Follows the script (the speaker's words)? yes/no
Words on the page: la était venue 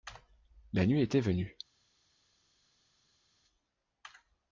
no